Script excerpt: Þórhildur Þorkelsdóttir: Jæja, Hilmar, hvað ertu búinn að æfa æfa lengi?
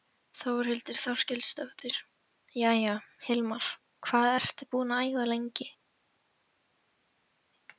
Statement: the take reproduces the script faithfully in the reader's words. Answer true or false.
false